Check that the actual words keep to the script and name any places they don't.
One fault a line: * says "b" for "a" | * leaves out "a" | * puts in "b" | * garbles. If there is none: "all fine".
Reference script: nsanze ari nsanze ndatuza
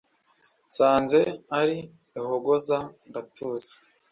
* says "ihogoza" for "nsanze"